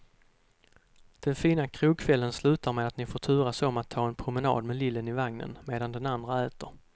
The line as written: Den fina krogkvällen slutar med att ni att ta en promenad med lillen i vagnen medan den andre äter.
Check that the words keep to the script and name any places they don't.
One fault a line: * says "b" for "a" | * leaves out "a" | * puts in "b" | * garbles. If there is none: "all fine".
* puts in "får turas om"